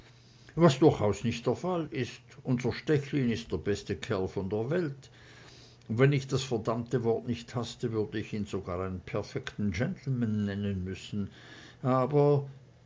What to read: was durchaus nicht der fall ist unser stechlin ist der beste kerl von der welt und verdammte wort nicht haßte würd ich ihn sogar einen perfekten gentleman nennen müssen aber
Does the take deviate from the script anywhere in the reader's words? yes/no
yes